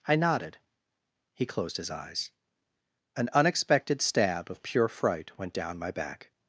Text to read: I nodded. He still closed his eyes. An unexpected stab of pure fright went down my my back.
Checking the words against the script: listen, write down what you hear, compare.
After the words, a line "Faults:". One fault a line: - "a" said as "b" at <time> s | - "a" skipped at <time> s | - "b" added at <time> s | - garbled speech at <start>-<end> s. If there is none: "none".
I nodded. He closed his eyes. An unexpected stab of pure fright went down my back.
Faults:
- "still" skipped at 1.4 s
- "my" skipped at 5.9 s